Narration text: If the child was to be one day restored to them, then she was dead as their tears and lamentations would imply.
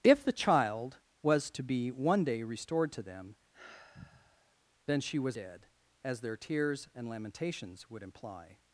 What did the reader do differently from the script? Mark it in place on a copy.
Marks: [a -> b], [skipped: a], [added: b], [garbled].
If the child was to be one day restored to them, then she was dead as their tears and lamentations would imply.